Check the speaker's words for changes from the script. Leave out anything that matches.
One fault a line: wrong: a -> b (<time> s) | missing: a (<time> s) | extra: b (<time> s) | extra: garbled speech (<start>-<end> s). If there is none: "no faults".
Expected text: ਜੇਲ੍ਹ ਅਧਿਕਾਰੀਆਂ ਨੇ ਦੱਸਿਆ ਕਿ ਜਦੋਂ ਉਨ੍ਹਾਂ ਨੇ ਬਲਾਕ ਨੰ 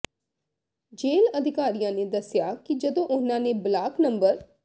no faults